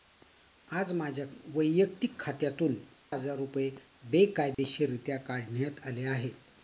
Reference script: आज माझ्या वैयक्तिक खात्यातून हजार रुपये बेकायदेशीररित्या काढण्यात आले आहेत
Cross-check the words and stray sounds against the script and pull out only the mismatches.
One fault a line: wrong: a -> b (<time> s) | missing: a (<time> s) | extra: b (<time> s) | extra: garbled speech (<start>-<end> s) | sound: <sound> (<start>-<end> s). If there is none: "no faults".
sound: dropout (4.5-4.6 s)